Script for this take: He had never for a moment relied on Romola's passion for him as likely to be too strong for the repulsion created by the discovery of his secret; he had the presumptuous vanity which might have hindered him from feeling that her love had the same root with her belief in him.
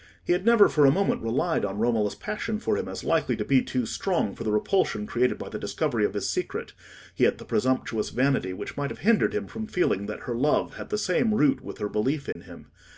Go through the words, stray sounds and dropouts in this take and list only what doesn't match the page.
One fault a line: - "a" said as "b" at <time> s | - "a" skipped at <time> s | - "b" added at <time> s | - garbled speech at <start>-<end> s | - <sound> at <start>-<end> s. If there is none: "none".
- dropout at 12.3-12.4 s